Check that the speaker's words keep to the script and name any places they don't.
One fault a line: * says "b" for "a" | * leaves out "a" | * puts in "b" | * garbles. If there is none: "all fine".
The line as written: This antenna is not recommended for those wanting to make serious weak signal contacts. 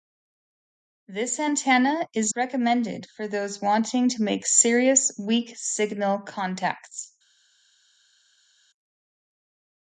* leaves out "not"